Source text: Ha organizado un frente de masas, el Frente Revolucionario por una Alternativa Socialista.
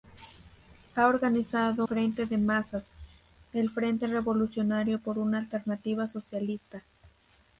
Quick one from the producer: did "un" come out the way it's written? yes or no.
no